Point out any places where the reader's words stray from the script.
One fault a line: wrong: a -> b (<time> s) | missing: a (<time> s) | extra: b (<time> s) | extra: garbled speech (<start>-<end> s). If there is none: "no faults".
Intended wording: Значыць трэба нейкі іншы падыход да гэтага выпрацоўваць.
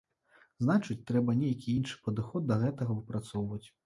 no faults